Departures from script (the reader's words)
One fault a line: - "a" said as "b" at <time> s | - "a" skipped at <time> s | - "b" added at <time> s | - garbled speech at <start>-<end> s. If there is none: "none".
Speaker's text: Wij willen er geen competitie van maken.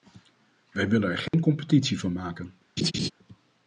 none